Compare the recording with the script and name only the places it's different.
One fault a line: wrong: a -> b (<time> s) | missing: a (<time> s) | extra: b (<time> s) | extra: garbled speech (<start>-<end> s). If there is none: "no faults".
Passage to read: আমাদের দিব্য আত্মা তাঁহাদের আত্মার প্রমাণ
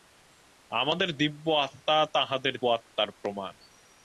no faults